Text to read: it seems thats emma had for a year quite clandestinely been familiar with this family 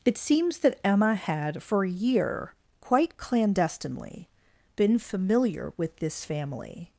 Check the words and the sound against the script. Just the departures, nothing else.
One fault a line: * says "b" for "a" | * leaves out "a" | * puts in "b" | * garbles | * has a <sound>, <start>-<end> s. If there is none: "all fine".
* says "that" for "thats"